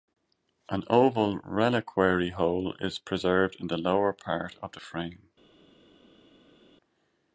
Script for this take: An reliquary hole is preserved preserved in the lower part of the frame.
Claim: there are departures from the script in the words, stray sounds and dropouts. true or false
true